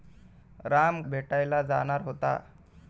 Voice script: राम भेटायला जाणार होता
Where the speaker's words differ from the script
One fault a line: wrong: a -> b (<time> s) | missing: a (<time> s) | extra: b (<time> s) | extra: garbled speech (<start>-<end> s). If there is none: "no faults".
no faults